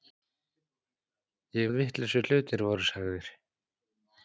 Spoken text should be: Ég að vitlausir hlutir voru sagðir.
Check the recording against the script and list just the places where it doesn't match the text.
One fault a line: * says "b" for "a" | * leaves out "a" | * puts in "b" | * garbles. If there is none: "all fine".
all fine